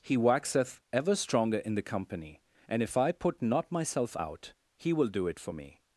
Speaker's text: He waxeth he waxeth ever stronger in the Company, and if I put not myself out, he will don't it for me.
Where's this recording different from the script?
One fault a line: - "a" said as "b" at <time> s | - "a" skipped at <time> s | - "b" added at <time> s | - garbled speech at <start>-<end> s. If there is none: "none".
- "he waxeth" skipped at 0.8 s
- "don't" said as "do" at 5.1 s